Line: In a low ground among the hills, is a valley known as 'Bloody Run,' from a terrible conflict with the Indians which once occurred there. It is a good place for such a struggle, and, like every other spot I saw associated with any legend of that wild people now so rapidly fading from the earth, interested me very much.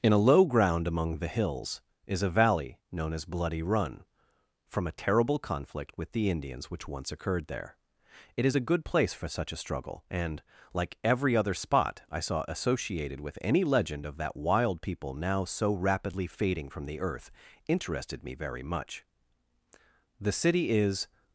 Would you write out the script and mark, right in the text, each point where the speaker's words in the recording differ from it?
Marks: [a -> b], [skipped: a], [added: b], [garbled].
In a low ground among the hills, is a valley known as 'Bloody Run,' from a terrible conflict with the Indians which once occurred there. It is a good place for such a struggle, and, like every other spot I saw associated with any legend of that wild people now so rapidly fading from the earth, interested me very much. [added: The city is]